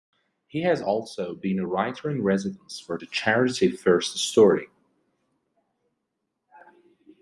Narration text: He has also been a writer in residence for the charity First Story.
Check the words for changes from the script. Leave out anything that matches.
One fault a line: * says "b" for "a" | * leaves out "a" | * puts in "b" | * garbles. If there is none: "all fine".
all fine